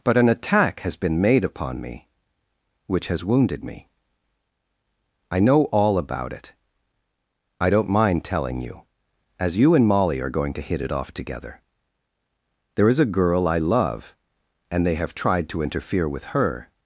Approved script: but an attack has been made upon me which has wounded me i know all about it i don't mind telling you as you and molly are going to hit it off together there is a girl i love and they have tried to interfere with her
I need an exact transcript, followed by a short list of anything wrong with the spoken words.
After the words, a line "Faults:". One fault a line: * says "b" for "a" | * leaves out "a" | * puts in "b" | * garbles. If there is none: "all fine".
but an attack has been made upon me which has wounded me i know all about it i don't mind telling you as you and molly are going to hit it off together there is a girl i love and they have tried to interfere with her
Faults:
all fine